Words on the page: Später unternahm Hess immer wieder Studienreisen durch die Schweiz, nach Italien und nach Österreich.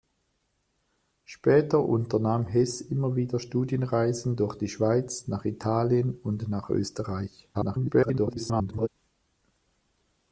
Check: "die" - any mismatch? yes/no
no